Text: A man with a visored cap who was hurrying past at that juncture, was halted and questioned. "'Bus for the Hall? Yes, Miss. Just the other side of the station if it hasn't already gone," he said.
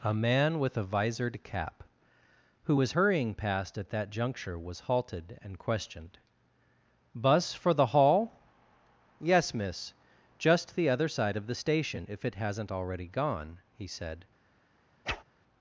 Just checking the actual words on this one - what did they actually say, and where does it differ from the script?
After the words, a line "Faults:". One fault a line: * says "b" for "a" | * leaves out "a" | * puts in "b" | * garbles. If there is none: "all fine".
A man with a visored cap who was hurrying past at that juncture, was halted and questioned. "'Bus for the Hall? Yes, Miss. Just the other side of the station if it hasn't already gone," he said.
Faults:
all fine